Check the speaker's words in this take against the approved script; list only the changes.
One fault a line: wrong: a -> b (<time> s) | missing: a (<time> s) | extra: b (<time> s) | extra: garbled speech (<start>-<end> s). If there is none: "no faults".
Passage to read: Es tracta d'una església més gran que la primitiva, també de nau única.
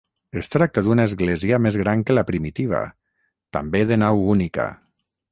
no faults